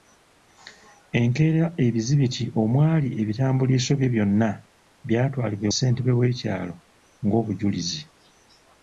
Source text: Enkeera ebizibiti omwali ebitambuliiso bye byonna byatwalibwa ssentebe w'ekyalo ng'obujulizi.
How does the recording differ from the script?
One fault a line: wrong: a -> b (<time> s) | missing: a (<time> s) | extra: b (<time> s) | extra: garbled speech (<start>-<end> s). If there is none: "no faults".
no faults